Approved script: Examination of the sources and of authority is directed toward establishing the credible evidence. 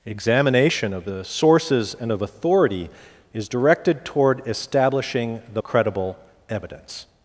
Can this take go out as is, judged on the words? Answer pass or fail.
pass